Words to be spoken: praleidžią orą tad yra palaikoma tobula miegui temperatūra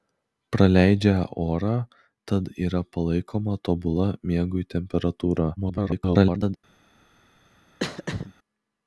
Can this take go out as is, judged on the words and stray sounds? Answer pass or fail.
fail